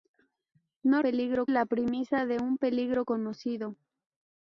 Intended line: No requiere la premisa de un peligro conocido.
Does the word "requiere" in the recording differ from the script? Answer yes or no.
yes